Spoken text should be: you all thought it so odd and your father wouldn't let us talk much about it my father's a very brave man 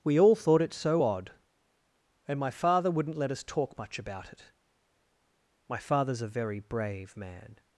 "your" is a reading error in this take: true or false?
true